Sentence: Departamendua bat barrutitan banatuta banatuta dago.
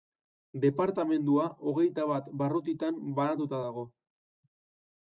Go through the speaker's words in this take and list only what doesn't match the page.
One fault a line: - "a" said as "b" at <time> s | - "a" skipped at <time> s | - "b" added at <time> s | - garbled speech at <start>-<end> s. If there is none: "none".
- "hogeita" added at 1.7 s
- "banatuta" skipped at 3.6 s